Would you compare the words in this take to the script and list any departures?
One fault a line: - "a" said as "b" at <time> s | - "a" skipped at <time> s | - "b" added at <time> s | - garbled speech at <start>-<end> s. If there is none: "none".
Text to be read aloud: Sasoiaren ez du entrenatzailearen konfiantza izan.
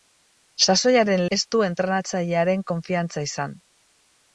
none